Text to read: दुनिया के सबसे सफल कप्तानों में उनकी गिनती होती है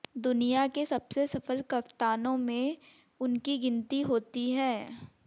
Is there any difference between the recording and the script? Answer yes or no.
no